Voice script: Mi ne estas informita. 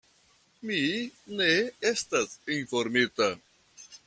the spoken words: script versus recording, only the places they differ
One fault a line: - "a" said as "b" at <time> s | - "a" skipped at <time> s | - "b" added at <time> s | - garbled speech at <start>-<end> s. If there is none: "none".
none